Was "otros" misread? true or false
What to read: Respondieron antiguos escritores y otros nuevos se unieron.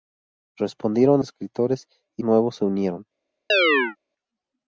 true